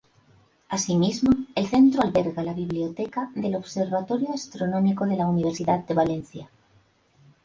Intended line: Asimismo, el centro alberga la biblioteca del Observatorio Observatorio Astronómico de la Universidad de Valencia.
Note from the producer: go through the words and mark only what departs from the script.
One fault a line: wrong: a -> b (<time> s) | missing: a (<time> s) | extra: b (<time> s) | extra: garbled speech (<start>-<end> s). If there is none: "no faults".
missing: Observatorio (4.3 s)